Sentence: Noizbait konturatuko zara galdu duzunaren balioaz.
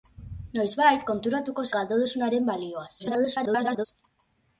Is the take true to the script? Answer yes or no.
no